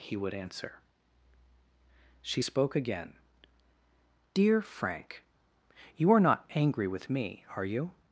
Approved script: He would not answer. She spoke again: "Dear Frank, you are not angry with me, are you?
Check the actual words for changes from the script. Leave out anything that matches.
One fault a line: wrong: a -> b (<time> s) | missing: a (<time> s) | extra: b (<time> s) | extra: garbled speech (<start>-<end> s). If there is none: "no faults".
missing: not (0.3 s)